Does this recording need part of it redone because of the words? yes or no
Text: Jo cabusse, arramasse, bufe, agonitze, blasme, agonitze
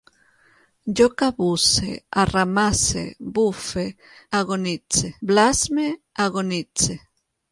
no